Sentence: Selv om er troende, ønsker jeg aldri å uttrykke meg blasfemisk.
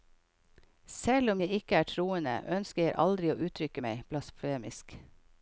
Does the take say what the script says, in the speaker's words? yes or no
no